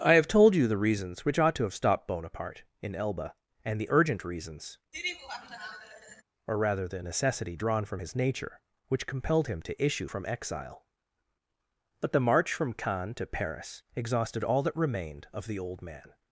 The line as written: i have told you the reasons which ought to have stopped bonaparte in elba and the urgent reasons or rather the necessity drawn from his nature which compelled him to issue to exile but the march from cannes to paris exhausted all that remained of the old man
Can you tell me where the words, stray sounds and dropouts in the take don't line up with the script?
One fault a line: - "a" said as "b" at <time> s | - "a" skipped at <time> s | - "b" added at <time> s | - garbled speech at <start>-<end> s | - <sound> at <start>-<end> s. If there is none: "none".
- laugh at 4.9-6.2 s
- "to" said as "from" at 10.1 s